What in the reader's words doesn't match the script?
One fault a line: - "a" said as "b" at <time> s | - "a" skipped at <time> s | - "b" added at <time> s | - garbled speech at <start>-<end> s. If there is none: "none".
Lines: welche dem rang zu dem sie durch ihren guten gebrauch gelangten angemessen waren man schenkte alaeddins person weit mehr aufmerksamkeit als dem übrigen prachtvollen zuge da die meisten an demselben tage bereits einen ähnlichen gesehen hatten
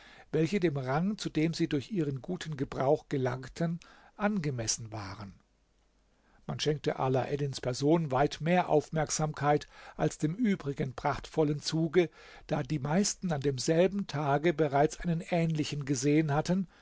none